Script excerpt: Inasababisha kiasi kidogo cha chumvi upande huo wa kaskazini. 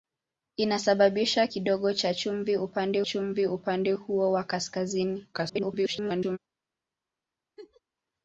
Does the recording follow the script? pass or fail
fail